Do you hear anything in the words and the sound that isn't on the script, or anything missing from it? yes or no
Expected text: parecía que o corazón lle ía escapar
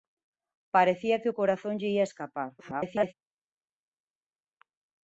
yes